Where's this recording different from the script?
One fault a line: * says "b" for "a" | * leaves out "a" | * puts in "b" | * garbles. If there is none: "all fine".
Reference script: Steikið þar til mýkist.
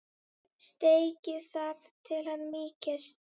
* puts in "hann"